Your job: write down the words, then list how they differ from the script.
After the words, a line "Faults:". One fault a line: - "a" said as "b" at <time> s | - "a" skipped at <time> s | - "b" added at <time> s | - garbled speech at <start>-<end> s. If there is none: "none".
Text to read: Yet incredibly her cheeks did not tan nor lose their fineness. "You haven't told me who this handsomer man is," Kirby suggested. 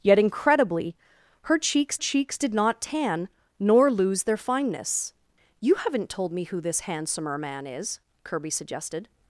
Yet incredibly her cheeks cheeks did not tan nor lose their fineness. "You haven't told me who this handsomer man is," Kirby suggested.
Faults:
- "cheeks" added at 2.0 s